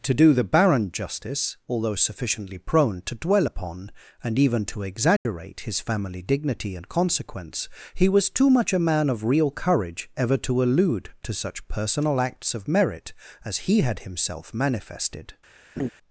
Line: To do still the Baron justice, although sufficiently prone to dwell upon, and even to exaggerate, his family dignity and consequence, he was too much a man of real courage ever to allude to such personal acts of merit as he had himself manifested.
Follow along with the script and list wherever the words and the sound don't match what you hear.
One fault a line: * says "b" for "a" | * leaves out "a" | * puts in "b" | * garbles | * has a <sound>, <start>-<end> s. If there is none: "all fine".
* leaves out "still"
* has a dropout, 5.2-5.3 s
* has a laugh, 15.8-15.9 s